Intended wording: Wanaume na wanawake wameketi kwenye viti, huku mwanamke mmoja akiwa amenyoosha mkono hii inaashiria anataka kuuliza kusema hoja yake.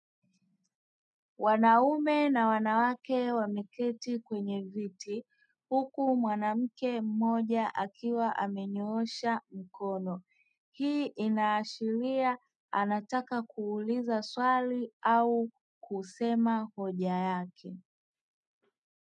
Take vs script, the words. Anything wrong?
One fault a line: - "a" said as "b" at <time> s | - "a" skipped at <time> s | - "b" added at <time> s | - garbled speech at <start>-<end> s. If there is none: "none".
- "swali au" added at 14.2 s